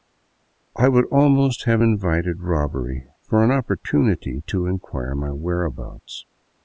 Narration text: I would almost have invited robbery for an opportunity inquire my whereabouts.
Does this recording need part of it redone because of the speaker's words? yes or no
yes